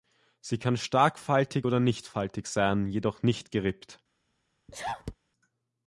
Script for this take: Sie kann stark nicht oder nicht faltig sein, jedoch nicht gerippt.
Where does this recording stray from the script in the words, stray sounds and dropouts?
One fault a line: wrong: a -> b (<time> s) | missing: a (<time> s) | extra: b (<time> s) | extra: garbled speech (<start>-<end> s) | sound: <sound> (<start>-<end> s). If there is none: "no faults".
wrong: nicht -> faltig (1.2 s)
sound: sneeze (4.7-5.2 s)